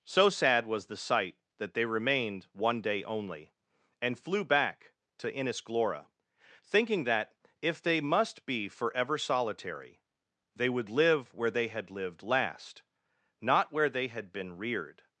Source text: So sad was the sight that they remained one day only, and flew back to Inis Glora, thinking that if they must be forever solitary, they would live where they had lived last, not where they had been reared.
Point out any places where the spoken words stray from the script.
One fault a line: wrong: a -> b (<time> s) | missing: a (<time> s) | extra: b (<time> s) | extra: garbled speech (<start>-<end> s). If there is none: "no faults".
no faults